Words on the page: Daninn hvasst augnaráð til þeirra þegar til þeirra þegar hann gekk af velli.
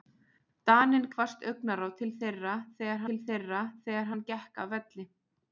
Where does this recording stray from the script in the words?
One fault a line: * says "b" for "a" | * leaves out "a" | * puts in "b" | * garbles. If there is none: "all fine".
all fine